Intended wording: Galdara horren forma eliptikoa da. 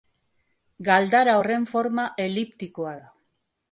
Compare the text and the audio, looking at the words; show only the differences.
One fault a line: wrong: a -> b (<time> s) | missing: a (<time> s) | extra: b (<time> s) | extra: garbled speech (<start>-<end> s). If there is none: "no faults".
no faults